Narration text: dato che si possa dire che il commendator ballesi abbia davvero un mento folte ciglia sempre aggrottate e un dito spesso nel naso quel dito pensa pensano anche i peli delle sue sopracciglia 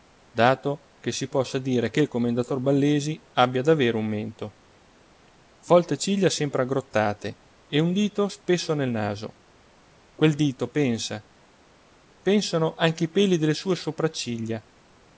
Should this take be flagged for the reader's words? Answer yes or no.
no